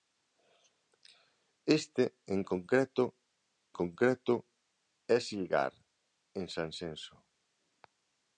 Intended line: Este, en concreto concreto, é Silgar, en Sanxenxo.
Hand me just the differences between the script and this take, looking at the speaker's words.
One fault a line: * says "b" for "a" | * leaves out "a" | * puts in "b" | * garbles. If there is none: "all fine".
all fine